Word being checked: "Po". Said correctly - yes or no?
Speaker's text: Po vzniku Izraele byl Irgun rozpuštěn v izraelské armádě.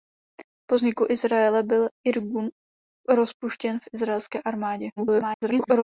yes